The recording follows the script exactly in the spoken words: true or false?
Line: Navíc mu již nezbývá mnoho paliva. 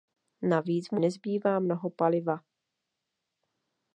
false